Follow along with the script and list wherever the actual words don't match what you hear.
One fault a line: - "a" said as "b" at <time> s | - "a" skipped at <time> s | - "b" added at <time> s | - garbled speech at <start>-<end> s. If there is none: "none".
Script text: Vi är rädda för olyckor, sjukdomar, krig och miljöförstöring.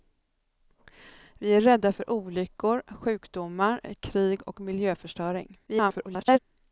- garbled speech at 5.7-6.4 s